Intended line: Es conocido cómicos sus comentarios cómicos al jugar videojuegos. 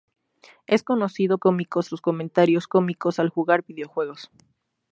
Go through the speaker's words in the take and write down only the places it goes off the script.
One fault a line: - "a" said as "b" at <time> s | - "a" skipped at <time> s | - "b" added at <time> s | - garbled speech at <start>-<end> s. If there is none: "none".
none